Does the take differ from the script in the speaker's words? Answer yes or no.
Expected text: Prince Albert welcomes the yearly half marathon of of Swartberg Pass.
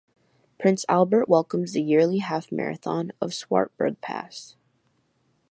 yes